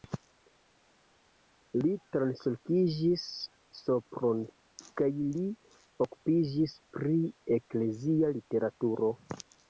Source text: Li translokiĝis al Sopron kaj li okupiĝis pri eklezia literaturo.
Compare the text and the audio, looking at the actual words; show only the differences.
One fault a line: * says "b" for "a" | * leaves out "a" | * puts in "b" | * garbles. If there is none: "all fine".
* leaves out "al"